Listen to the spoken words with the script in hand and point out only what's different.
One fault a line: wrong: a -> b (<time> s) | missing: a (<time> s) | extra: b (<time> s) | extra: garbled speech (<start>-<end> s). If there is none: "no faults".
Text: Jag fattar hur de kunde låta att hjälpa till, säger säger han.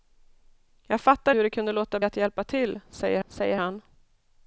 no faults